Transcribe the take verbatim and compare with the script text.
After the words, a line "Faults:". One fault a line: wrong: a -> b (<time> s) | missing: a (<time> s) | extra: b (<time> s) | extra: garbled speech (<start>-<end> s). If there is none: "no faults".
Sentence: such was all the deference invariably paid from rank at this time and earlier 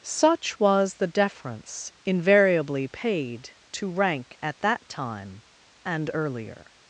such was the deference invariably paid to rank at that time and earlier
Faults:
missing: all (0.9 s)
wrong: from -> to (3.7 s)
wrong: this -> that (4.6 s)